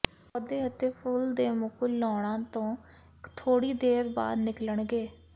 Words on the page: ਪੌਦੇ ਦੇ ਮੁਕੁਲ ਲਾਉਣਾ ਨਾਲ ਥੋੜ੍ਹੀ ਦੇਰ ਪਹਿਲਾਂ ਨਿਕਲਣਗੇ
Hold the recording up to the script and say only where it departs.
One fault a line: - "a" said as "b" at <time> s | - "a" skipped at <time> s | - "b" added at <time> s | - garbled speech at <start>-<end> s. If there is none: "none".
- "ਅਤੇ ਫੁੱਲ" added at 0.7 s
- "ਨਾਲ" said as "ਤੋਂ" at 2.5 s
- "ਪਹਿਲਾਂ" said as "ਬਾਅਦ" at 4.2 s